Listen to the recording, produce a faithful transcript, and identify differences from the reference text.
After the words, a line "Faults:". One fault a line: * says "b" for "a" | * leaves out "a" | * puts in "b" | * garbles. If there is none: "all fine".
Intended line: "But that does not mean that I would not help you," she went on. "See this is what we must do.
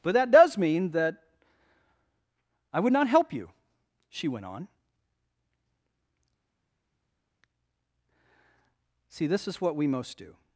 "But that does mean that I would not help you," she went on. "See this is what we most do.
Faults:
* leaves out "not"
* says "most" for "must"